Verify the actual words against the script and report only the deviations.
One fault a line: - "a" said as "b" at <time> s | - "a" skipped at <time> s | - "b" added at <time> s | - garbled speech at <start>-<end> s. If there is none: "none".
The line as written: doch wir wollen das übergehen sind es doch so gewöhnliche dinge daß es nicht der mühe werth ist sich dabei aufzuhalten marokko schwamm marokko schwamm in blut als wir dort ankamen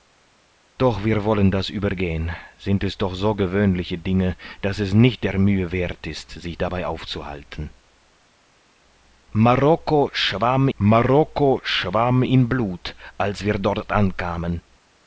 none